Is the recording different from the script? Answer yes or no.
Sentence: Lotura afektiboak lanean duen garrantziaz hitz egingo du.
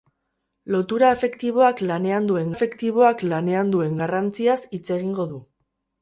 yes